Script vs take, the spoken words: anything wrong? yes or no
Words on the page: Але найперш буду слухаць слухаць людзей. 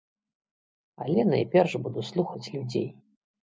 yes